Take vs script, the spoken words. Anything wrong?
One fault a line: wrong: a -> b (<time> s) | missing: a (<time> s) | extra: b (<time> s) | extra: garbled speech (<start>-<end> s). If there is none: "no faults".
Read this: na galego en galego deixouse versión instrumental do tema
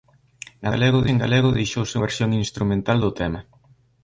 no faults